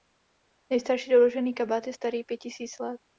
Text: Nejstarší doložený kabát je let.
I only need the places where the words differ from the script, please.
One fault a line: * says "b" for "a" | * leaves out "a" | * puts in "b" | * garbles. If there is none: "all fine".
* puts in "starý pět tisíc"